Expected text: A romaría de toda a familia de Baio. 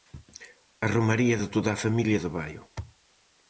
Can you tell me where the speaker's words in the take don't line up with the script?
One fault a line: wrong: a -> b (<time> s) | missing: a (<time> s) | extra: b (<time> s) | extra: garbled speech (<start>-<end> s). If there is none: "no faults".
no faults